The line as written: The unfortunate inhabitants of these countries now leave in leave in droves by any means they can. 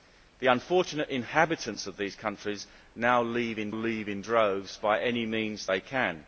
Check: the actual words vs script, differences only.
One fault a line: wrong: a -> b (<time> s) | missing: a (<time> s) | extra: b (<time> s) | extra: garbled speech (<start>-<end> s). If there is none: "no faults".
no faults